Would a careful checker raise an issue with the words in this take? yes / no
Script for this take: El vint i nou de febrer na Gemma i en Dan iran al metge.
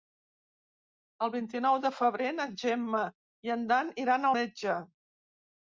yes